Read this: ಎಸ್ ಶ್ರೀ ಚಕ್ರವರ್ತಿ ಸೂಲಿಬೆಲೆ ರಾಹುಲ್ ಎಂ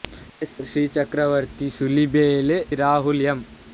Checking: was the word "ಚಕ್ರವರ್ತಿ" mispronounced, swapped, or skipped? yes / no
no